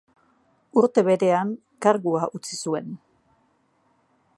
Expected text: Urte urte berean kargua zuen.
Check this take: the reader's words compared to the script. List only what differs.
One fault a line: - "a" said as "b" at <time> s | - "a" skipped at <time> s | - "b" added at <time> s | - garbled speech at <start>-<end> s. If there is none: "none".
- "urte" skipped at 1.0 s
- "utzi" added at 2.4 s